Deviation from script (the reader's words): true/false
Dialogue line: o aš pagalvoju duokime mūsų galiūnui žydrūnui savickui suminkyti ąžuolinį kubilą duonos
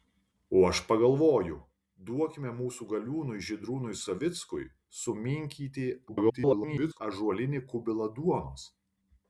true